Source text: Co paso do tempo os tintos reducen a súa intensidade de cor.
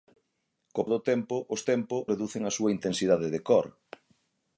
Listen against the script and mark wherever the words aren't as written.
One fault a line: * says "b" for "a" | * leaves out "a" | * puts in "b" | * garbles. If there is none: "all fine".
* leaves out "paso"
* says "tempo" for "tintos"